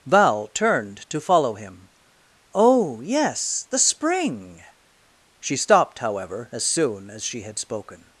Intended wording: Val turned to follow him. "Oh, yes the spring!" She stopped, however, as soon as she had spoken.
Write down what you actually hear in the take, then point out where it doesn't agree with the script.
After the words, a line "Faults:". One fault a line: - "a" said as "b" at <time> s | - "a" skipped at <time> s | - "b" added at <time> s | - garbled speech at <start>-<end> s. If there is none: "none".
Val turned to follow him. "Oh, yes the spring!" She stopped, however, as soon as she had spoken.
Faults:
none